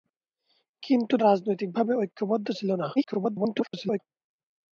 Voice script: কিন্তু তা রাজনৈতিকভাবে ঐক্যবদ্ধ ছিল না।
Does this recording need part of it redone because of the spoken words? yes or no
yes